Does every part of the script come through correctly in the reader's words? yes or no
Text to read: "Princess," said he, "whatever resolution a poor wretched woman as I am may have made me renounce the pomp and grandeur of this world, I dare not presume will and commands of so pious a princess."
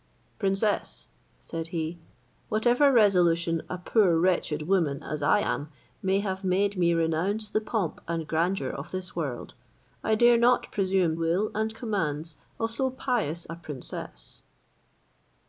yes